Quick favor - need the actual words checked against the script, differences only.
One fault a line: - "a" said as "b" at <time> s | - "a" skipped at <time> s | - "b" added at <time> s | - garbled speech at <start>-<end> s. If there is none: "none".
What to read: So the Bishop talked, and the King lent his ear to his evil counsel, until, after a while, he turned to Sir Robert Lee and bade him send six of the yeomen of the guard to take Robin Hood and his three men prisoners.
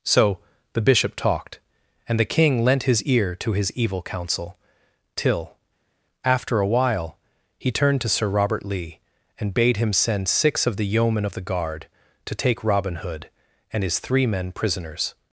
- "until" said as "till" at 5.2 s